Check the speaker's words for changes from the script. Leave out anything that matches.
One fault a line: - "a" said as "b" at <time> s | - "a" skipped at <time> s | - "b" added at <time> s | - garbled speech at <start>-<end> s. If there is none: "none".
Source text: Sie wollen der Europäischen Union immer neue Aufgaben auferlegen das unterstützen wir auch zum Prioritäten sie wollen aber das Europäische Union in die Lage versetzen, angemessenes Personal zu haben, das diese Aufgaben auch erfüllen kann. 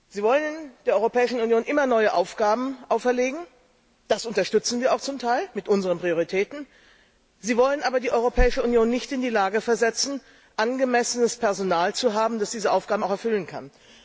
- "Teil mit unseren" added at 5.2 s
- "das" said as "die" at 8.0 s
- "nicht" added at 8.9 s